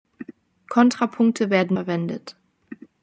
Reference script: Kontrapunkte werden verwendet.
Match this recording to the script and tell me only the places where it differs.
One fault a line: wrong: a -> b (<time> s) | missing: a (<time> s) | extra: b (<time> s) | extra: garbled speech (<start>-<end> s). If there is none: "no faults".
no faults